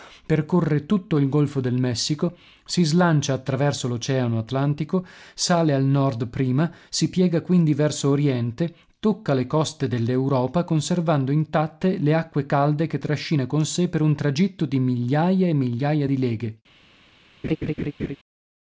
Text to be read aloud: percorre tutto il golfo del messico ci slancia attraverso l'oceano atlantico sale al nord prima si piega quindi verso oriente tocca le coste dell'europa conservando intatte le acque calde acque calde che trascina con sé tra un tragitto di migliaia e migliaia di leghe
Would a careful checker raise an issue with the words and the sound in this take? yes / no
yes